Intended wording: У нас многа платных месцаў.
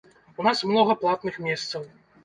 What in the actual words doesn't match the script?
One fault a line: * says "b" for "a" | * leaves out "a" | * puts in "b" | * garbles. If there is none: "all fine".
all fine